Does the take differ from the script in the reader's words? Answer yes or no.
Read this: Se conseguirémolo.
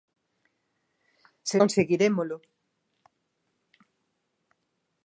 no